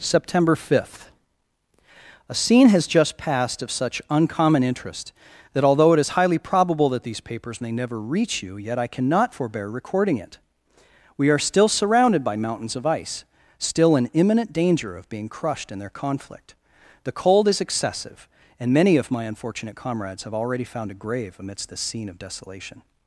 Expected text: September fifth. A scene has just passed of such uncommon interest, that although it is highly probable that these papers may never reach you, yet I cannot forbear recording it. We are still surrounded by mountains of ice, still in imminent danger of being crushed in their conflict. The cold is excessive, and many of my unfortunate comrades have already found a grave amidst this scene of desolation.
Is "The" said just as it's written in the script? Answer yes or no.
yes